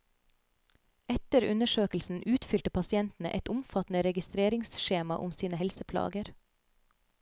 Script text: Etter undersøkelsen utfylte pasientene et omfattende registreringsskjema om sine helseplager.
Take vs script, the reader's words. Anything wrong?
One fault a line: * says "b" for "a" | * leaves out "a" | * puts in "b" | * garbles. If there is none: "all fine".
all fine